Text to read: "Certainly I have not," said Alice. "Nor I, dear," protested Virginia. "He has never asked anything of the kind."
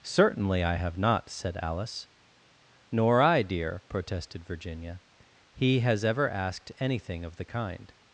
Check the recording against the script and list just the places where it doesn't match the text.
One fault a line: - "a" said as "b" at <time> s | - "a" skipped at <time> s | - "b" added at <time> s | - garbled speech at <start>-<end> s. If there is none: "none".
- "never" said as "ever" at 6.1 s